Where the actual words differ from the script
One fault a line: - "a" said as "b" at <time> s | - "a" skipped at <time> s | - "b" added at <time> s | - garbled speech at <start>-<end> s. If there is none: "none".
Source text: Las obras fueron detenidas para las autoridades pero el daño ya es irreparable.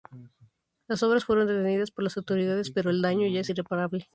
- "para" said as "por" at 1.9 s